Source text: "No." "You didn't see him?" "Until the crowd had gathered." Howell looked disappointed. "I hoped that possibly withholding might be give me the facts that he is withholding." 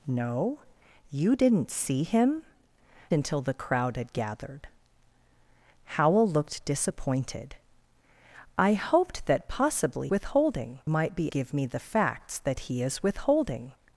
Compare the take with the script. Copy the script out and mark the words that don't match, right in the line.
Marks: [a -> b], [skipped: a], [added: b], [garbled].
"No." "You didn't see him?" "Until the crowd had gathered." Howell looked disappointed. "I hoped that possibly withholding might be give me the facts that he is withholding."